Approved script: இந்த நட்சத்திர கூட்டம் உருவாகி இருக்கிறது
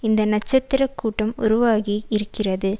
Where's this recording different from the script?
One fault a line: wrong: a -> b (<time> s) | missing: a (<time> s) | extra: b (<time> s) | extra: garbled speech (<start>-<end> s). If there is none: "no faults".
no faults